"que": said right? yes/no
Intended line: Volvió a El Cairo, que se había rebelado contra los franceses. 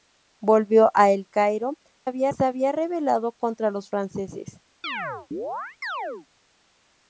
no